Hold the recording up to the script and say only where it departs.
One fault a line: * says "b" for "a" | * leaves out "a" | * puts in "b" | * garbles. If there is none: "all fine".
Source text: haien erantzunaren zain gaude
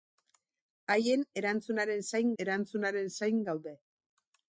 * puts in "erantzunaren zain"